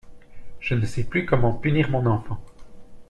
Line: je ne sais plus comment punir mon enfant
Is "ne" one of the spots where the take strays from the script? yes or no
no